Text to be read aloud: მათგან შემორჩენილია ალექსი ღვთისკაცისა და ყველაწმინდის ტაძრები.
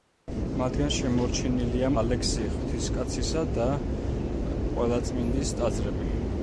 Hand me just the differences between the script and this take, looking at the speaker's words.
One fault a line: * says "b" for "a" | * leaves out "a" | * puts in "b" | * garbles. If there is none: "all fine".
all fine